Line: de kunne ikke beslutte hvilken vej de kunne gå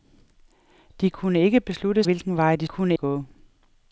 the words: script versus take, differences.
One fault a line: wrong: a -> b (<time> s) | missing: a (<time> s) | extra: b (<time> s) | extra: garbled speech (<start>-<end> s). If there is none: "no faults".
no faults